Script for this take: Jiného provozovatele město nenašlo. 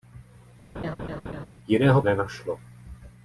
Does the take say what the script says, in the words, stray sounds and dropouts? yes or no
no